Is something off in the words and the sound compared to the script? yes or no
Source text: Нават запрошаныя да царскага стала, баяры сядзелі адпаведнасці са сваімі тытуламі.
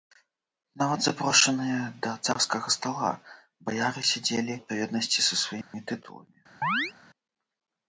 yes